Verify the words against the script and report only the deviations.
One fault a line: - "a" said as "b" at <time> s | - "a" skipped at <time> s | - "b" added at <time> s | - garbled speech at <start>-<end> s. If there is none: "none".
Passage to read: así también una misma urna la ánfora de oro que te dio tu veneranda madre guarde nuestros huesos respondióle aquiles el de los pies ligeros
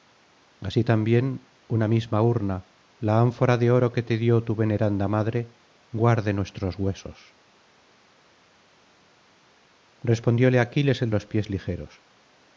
- "de" skipped at 11.1 s